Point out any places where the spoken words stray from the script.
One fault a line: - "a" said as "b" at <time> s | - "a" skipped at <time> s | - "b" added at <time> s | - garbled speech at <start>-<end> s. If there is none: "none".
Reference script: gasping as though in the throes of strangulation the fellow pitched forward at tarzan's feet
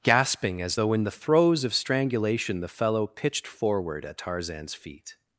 none